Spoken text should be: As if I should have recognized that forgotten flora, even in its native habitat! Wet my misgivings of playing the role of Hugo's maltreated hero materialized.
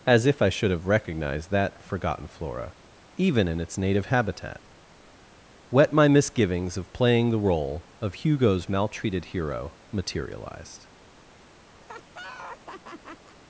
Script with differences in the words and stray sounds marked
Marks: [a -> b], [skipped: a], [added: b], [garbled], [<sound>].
As if I should have recognized that forgotten flora, even in its native habitat! Wet my misgivings of playing the role of Hugo's maltreated hero materialized. [laugh]